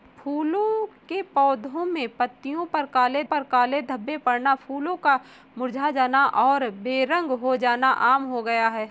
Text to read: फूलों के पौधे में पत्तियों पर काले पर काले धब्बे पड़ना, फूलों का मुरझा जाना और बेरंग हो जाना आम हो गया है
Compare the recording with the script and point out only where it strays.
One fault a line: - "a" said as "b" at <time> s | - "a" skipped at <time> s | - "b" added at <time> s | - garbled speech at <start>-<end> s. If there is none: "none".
none